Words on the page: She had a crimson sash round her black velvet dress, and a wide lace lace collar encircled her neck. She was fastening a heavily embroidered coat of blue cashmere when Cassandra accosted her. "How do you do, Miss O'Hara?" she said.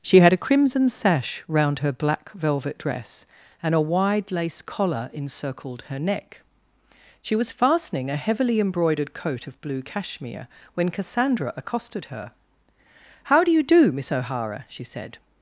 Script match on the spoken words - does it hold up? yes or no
no